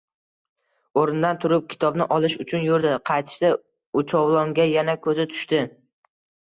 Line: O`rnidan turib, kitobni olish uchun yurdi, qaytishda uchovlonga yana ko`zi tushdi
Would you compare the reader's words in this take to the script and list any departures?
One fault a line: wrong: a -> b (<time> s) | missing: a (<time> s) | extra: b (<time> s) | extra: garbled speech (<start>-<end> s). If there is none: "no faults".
no faults